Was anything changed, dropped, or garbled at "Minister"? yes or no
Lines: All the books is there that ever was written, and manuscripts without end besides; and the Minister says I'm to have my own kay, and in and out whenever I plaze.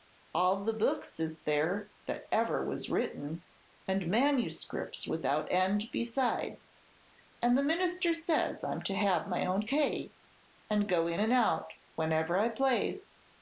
no